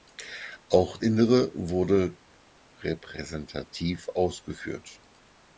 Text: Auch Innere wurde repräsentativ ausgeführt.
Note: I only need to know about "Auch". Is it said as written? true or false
true